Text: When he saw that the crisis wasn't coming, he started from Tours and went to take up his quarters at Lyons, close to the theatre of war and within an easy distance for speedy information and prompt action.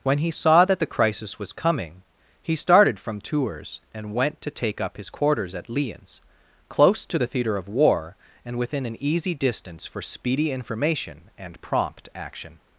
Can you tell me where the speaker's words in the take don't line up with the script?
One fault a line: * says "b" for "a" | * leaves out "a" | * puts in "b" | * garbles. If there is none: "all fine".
* says "was" for "wasn't"